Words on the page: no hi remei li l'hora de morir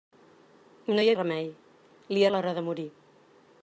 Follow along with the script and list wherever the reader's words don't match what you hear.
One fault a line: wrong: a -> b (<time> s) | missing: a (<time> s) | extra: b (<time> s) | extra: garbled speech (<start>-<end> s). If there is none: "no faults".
no faults